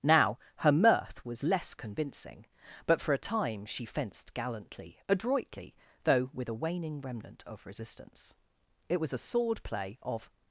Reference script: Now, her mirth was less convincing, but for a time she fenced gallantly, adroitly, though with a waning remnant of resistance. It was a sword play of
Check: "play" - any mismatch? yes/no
no